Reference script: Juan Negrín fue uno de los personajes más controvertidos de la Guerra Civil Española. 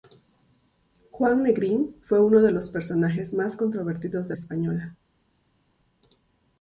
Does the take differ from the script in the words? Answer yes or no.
yes